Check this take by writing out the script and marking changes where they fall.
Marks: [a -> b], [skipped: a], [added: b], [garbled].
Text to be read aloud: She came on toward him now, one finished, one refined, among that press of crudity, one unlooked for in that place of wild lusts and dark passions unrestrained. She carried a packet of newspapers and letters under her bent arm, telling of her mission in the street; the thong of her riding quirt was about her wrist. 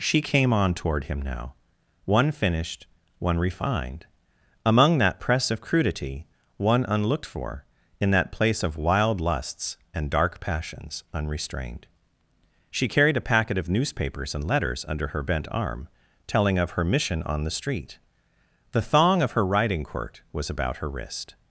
She came on toward him now, one finished, one refined, among that press of crudity, one unlooked for in that place of wild lusts and dark passions unrestrained. She carried a packet of newspapers and letters under her bent arm, telling of her mission [in -> on] the street; the thong of her riding quirt was about her wrist.